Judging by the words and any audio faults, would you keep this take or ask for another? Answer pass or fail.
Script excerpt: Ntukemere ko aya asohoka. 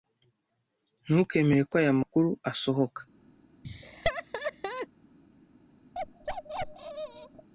fail